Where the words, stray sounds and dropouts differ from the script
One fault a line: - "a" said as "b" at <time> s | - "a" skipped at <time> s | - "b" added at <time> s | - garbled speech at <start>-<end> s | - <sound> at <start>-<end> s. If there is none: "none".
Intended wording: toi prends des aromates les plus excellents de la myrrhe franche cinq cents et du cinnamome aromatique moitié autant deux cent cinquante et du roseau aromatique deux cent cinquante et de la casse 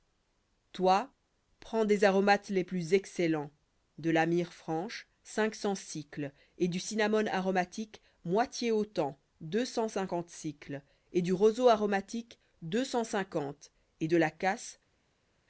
none